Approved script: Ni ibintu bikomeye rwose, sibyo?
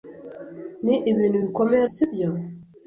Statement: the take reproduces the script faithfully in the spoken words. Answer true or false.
false